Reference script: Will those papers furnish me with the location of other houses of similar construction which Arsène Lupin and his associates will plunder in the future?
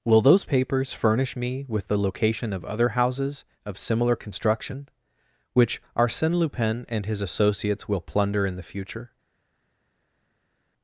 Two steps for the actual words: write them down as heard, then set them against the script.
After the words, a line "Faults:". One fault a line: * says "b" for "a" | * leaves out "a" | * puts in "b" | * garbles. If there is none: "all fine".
Will those papers furnish me with the location of other houses of similar construction which Arsène Lupin and his associates will plunder in the future?
Faults:
all fine